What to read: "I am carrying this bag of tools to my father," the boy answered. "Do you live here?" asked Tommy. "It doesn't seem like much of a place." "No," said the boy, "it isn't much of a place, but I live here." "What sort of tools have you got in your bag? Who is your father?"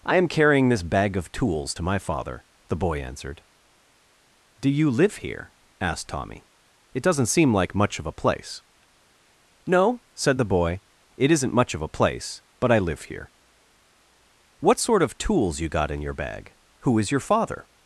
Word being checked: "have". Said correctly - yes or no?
no